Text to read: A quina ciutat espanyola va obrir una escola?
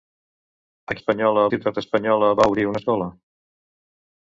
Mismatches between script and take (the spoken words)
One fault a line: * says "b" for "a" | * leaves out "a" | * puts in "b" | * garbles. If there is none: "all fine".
* says "espanyola" for "quina"